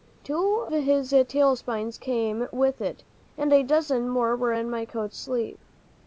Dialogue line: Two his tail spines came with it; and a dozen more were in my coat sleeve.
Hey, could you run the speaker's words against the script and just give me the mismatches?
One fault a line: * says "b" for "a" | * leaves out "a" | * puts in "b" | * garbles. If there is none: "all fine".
all fine